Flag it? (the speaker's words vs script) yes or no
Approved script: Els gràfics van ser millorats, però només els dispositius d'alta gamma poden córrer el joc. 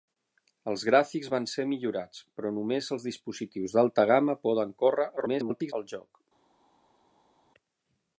yes